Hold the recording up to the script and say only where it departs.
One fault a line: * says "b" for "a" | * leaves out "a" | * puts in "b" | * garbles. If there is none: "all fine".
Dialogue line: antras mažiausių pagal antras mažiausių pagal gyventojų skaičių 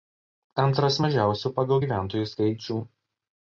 * leaves out "antras mažiausių pagal"